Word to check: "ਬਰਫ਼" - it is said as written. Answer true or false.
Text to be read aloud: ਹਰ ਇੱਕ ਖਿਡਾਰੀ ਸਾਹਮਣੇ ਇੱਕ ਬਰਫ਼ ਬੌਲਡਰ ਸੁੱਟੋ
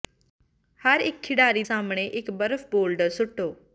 true